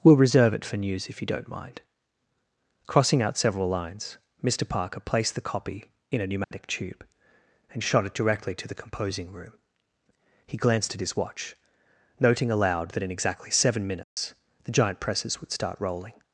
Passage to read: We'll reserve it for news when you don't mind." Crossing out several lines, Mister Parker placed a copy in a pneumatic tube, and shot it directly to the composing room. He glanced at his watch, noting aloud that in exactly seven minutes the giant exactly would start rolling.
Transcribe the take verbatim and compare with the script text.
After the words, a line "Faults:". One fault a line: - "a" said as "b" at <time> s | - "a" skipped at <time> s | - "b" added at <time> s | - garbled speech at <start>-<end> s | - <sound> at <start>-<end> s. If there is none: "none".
We'll reserve it for news if you don't mind." Crossing out several lines, Mister Parker placed the copy in a pneumatic tube, and shot it directly to the composing room. He glanced at his watch, noting aloud that in exactly seven minutes the giant presses would start rolling.
Faults:
- "when" said as "if" at 1.1 s
- "a" said as "the" at 5.3 s
- dropout at 6.4-6.5 s
- dropout at 14.0-14.2 s
- "exactly" said as "presses" at 15.0 s